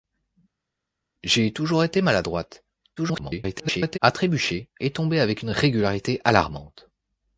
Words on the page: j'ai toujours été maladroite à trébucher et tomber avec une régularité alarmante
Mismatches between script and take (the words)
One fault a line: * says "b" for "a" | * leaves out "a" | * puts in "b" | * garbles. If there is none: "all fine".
* garbles